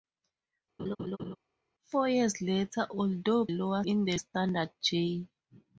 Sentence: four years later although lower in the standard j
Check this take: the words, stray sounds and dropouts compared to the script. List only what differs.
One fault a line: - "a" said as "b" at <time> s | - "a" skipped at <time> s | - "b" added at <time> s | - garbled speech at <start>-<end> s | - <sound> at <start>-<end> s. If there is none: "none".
- laugh at 0.8-1.4 s